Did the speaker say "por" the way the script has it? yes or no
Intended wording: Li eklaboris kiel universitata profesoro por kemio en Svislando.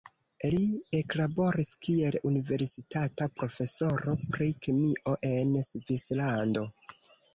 no